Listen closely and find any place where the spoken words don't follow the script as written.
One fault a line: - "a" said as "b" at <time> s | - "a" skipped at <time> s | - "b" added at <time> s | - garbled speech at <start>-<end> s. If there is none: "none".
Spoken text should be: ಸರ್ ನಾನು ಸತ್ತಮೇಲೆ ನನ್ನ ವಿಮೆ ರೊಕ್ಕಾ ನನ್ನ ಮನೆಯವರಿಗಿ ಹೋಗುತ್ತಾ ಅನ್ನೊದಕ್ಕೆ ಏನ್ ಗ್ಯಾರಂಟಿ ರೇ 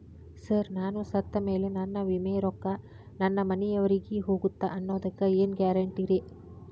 none